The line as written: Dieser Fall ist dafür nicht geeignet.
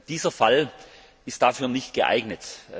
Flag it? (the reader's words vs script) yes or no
no